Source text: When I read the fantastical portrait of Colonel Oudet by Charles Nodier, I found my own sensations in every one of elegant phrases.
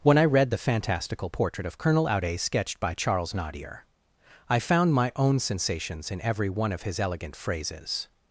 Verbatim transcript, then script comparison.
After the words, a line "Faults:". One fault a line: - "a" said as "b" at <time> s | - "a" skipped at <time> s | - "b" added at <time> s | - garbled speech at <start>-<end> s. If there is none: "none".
When I read the fantastical portrait of Colonel Oudet sketched by Charles Nodier, I found my own sensations in every one of his elegant phrases.
Faults:
- "sketched" added at 2.4 s
- "his" added at 6.8 s